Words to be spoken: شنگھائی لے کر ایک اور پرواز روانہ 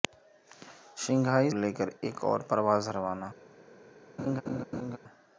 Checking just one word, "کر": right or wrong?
right